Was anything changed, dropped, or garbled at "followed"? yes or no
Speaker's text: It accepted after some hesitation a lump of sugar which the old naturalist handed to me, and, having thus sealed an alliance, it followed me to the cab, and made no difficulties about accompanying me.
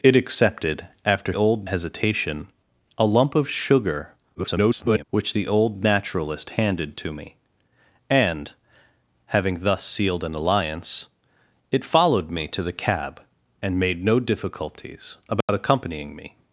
no